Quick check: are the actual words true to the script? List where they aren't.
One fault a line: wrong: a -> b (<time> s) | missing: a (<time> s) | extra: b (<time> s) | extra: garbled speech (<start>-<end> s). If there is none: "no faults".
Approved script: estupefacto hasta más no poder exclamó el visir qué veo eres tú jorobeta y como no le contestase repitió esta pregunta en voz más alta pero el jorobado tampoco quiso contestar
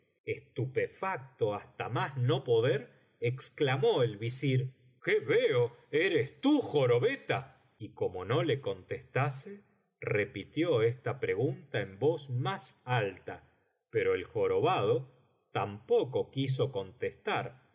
no faults